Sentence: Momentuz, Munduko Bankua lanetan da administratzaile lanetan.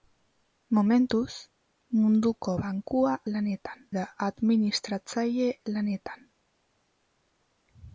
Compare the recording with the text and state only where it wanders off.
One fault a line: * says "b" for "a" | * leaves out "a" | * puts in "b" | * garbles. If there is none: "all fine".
all fine